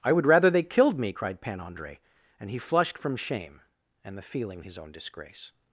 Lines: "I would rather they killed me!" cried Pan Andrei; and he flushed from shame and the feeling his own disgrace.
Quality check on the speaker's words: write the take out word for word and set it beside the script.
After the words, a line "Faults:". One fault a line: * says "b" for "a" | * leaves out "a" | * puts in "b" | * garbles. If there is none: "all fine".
"I would rather they killed me!" cried Pan Andrei; and he flushed from shame and the feeling his own disgrace.
Faults:
all fine